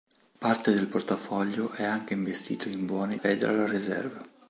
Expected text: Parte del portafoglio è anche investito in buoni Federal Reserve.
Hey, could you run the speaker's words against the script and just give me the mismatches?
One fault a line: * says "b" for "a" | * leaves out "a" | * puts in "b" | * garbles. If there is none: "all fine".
all fine